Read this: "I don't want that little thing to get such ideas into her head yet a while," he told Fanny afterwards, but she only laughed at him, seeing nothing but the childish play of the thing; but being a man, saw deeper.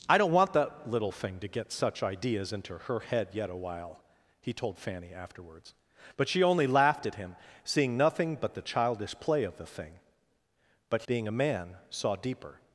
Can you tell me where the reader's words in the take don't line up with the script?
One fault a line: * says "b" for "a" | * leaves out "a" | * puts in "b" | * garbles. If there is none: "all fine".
all fine